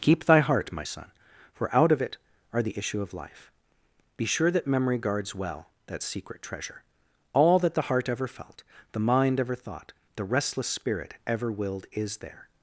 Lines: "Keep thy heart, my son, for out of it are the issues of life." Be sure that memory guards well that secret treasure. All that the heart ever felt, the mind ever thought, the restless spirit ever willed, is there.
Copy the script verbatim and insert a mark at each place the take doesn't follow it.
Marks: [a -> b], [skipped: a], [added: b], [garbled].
"Keep thy heart, my son, for out of it are the [issues -> issue] of life." Be sure that memory guards well that secret treasure. All that the heart ever felt, the mind ever thought, the restless spirit ever willed, is there.